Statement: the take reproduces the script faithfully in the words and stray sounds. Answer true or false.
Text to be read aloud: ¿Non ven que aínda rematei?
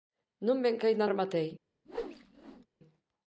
false